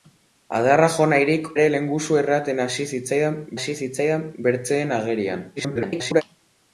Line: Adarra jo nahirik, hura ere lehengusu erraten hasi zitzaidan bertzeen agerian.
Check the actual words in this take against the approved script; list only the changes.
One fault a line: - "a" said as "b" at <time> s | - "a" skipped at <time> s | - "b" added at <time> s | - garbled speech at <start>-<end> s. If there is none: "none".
- "hura" skipped at 1.5 s
- "hasi zitzaidan" added at 3.6 s
- garbled speech at 5.6-6.2 s